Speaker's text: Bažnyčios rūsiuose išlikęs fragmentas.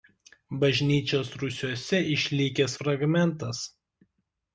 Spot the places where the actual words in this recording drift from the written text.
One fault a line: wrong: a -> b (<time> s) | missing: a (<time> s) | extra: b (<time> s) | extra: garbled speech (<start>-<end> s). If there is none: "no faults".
no faults